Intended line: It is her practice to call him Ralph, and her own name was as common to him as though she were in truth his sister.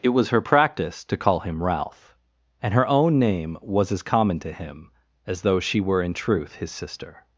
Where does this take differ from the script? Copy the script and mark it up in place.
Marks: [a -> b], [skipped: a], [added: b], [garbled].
It [is -> was] her practice to call him Ralph, and her own name was as common to him as though she were in truth his sister.